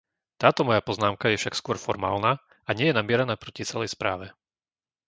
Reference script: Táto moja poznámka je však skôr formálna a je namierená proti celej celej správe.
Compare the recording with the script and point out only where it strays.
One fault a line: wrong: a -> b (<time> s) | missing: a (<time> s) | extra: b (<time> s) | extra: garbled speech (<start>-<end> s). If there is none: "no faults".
extra: nie (2.7 s)
missing: celej (3.9 s)